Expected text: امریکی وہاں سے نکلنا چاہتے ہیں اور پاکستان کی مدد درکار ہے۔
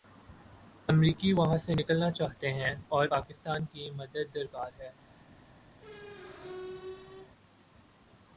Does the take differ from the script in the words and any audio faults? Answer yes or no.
yes